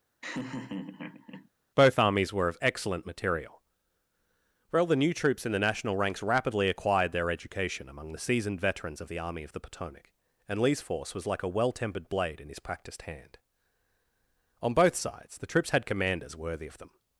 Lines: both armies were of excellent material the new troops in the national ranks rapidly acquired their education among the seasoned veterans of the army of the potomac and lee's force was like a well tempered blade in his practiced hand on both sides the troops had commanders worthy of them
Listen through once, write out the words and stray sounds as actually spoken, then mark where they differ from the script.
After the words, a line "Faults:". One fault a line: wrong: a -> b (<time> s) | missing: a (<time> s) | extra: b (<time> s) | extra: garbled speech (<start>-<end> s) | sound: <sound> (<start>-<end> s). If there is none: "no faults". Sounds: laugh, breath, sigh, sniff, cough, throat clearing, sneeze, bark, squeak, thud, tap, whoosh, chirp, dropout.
both armies were of excellent material well the new troops in the national ranks rapidly acquired their education among the seasoned veterans of the army of the potomac and lee's force was like a well tempered blade in his practiced hand on both sides the troops had commanders worthy of them
Faults:
sound: laugh (0.2-1.5 s)
extra: well (4.7 s)